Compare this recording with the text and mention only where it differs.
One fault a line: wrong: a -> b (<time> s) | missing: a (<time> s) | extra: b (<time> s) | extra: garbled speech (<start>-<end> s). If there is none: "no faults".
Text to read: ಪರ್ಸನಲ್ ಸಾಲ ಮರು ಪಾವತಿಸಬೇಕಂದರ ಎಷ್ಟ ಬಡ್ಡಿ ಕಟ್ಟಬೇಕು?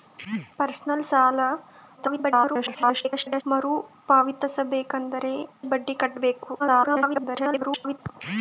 extra: garbled speech (2.0-3.4 s)
missing: ಎಷ್ಟ (5.2 s)
extra: garbled speech (6.6-8.0 s)